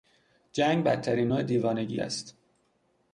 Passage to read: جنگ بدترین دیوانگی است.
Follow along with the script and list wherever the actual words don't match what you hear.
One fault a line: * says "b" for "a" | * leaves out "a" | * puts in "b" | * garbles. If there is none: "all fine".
* puts in "نوع"